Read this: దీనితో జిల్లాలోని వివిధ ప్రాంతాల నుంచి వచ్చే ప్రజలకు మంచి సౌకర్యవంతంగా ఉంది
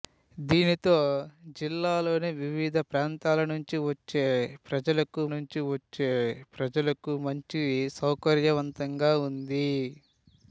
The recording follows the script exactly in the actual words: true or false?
false